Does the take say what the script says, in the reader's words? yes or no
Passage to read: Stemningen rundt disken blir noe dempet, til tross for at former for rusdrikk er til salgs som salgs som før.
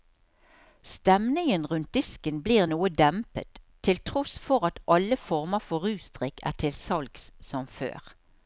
no